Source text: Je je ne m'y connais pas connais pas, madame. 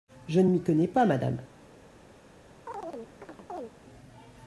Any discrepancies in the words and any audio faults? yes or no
yes